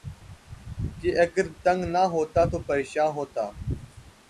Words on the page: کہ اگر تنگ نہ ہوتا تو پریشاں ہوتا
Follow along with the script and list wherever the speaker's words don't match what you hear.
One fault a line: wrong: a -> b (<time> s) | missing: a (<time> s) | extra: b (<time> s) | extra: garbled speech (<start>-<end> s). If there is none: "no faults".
no faults